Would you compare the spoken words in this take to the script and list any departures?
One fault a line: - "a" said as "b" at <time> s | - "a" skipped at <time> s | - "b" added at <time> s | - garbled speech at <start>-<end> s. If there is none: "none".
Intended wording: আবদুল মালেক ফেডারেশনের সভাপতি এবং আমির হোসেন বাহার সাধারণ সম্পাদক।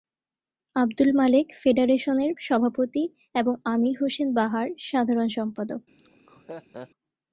none